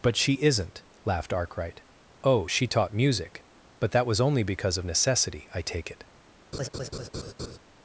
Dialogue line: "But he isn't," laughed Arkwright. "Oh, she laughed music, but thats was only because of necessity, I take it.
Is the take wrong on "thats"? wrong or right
wrong